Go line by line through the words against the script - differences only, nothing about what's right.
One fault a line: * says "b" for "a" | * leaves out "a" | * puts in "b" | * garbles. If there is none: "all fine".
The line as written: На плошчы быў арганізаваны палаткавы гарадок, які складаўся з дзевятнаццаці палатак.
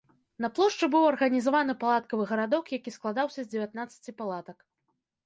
all fine